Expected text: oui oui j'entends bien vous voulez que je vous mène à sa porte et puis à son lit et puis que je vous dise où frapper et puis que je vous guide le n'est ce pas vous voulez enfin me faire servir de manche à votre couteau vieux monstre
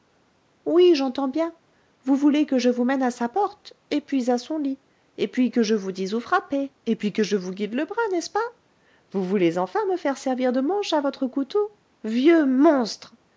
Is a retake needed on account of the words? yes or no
yes